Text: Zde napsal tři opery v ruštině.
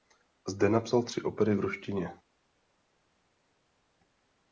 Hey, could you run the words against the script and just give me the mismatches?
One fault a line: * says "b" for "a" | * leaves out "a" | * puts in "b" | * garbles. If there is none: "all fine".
all fine